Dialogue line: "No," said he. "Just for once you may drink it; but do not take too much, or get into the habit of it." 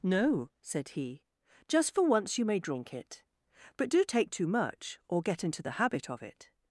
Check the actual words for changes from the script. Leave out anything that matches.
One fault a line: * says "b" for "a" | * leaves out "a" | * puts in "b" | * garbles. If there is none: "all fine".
* leaves out "not"